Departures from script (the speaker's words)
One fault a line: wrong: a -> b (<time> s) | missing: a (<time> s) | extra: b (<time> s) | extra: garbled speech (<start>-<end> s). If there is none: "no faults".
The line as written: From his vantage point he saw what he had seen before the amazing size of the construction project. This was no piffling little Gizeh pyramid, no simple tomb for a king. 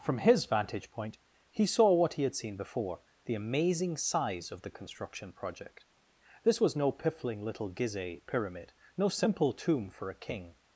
no faults